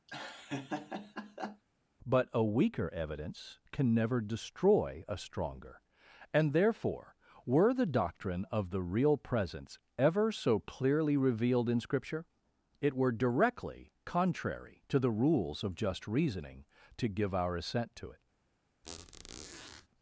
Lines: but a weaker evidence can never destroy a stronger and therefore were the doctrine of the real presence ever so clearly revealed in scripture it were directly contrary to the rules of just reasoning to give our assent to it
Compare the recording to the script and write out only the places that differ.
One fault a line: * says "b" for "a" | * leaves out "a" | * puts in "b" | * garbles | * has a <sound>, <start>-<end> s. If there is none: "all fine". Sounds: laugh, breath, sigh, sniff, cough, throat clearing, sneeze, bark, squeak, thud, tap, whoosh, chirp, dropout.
* has a laugh, 0.1-1.6 s
* has a squeak, 18.8-19.9 s